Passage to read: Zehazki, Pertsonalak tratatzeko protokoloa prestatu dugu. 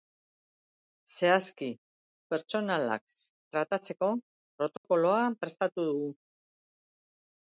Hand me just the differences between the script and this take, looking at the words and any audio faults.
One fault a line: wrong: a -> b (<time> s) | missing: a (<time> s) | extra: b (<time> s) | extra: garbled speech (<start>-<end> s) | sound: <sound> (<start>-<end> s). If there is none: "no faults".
sound: dropout (4.8-4.8 s)